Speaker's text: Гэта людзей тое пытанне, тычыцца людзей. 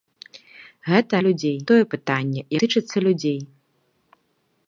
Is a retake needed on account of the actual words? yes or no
no